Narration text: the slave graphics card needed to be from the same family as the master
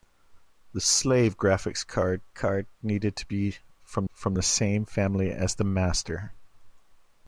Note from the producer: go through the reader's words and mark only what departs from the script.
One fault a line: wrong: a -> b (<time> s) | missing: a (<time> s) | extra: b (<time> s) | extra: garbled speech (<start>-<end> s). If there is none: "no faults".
extra: card (2.3 s)
extra: from (4.1 s)